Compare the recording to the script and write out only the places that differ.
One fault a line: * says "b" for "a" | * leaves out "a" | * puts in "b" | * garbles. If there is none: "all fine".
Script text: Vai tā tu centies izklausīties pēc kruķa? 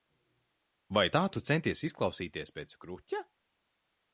all fine